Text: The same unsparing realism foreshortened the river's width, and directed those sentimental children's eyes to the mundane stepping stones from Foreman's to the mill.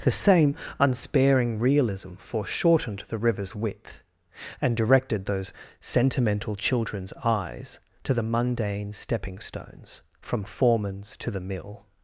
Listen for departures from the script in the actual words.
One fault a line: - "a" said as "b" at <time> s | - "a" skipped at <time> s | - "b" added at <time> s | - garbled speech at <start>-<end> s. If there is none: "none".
none